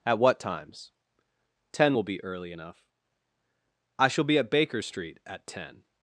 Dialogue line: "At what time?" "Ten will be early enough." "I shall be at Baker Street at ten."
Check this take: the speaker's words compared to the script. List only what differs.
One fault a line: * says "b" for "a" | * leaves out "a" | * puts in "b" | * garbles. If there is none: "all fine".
* says "times" for "time"